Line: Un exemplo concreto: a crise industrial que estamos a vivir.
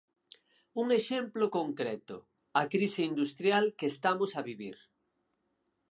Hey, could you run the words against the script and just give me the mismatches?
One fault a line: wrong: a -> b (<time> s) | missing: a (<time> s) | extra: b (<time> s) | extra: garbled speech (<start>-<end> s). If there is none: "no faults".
no faults